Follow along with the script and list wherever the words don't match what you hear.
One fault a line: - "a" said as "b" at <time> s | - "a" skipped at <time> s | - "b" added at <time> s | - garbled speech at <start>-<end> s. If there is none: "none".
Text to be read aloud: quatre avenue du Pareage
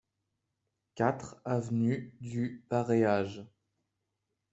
none